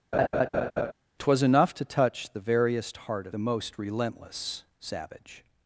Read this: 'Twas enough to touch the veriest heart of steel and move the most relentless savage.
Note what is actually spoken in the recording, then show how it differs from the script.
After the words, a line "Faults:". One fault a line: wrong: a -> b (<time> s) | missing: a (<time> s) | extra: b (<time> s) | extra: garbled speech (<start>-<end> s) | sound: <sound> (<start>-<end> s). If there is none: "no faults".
'Twas enough to touch the veriest heart of the most relentless savage.
Faults:
sound: laugh (0.1-0.9 s)
missing: steel and move (3.4 s)